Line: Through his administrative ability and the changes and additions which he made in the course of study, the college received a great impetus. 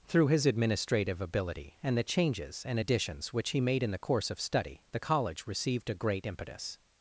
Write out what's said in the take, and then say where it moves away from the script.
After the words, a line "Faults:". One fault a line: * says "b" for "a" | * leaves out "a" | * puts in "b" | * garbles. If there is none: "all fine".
Through his administrative ability and the changes and additions which he made in the course of study, the college received a great impetus.
Faults:
all fine